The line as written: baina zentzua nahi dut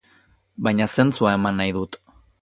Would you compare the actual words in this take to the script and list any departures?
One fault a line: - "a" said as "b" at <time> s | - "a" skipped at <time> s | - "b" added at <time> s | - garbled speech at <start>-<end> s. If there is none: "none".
- "eman" added at 1.4 s